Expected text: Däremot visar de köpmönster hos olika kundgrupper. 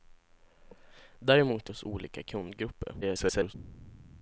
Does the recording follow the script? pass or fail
fail